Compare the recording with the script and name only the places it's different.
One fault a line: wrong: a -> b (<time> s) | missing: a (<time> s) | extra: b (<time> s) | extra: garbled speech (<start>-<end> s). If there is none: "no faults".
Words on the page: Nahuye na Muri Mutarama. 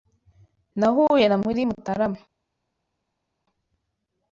no faults